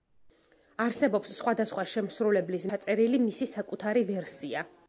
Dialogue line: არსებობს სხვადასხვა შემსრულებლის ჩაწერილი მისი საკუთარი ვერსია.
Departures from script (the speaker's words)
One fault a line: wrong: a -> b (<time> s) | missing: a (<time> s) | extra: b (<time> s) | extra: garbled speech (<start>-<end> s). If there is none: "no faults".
no faults